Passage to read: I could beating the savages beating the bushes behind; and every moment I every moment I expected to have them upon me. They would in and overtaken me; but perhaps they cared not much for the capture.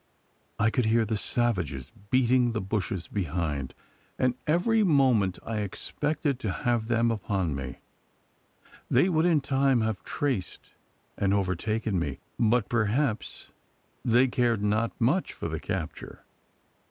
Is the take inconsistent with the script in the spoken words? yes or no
yes